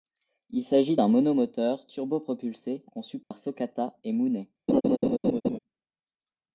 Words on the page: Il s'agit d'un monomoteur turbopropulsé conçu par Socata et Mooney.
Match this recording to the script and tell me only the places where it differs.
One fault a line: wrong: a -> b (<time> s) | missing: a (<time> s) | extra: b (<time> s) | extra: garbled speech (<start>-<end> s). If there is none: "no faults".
no faults